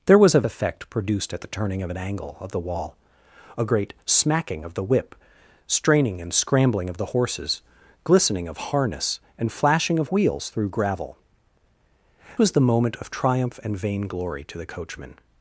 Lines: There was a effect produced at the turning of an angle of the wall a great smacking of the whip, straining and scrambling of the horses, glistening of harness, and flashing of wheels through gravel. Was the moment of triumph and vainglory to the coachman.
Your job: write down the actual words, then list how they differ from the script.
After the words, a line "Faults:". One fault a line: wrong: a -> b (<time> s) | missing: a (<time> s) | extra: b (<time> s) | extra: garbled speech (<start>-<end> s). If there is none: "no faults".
There was a effect produced at the turning of an angle of the wall a great smacking of the whip, straining and scrambling of the horses, glistening of harness, and flashing of wheels through gravel. Was the moment of triumph and vainglory to the coachman.
Faults:
no faults